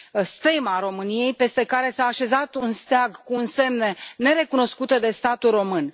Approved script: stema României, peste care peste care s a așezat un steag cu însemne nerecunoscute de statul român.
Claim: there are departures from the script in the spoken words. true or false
true